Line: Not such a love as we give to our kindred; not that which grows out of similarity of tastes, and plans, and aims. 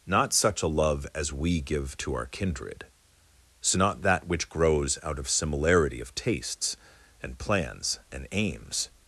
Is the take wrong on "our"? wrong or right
right